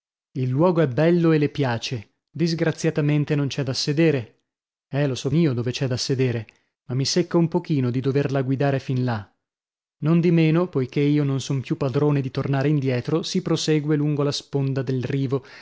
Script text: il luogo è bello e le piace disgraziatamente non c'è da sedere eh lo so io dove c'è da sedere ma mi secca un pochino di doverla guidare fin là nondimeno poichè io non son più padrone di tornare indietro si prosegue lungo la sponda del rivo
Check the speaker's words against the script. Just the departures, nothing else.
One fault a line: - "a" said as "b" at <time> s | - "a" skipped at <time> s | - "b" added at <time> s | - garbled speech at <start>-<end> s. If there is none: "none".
none